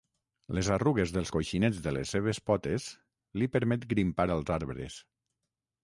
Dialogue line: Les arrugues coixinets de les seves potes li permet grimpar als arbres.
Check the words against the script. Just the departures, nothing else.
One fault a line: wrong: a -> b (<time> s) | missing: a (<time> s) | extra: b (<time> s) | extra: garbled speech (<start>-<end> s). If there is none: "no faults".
extra: dels (1.2 s)